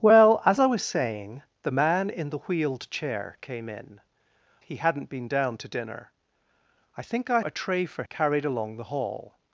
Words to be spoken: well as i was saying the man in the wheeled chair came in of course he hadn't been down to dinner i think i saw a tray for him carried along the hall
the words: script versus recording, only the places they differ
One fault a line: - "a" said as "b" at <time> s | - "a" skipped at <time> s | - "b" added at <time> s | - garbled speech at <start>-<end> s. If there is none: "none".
- "of course" skipped at 4.0 s
- "saw" skipped at 7.4 s
- "him" skipped at 8.0 s